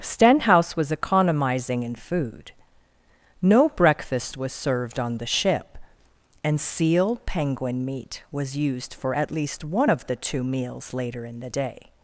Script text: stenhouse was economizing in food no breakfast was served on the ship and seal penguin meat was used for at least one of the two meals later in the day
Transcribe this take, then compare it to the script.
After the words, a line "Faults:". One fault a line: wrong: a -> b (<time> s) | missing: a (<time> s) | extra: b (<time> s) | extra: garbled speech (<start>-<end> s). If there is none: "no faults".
stenhouse was economizing in food no breakfast was served on the ship and seal penguin meat was used for at least one of the two meals later in the day
Faults:
no faults